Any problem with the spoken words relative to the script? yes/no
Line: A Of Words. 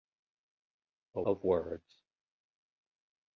no